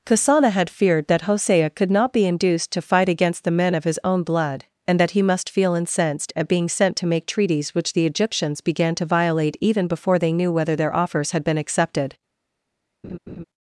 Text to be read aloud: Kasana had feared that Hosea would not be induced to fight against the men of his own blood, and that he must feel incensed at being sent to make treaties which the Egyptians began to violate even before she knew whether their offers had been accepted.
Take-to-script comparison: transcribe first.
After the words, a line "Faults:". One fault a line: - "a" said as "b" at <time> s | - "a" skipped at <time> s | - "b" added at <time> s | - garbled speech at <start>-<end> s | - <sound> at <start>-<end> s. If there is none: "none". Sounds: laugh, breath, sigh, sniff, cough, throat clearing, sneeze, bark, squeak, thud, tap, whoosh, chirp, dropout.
Kasana had feared that Hosea could not be induced to fight against the men of his own blood, and that he must feel incensed at being sent to make treaties which the Egyptians began to violate even before they knew whether their offers had been accepted.
Faults:
- "would" said as "could" at 1.7 s
- "she" said as "they" at 10.2 s
- laugh at 13.0-13.4 s